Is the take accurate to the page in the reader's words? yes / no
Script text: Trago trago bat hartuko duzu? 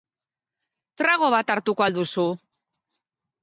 no